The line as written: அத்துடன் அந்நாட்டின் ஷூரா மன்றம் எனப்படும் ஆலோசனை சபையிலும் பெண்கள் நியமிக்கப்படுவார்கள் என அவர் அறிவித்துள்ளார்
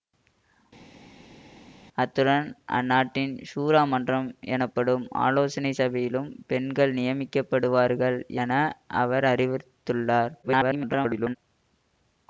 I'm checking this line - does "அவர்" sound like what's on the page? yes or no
yes